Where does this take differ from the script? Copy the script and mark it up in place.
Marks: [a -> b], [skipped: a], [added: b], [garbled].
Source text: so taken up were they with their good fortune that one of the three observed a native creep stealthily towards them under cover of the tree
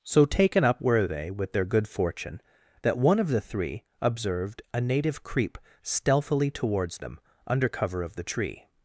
so taken up were they with their good fortune that one of the three observed a native creep stealthily towards them under cover of the tree